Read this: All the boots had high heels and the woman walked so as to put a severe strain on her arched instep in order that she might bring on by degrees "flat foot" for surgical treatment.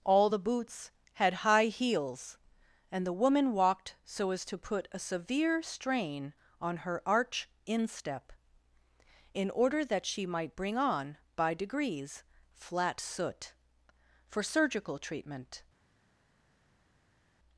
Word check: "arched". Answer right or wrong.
wrong